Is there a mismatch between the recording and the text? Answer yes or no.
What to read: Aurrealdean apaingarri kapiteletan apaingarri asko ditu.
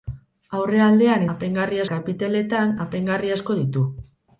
no